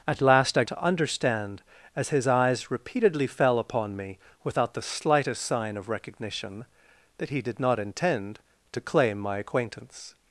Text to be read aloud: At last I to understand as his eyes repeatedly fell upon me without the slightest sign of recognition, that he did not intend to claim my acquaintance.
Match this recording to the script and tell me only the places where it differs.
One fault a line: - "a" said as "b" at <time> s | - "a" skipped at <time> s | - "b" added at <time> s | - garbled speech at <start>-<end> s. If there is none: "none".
none